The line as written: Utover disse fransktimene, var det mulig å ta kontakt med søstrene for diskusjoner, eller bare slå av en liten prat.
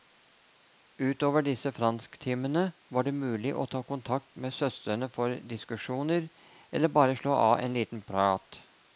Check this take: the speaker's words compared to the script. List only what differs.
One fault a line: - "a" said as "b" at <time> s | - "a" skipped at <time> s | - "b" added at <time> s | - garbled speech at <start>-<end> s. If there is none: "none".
none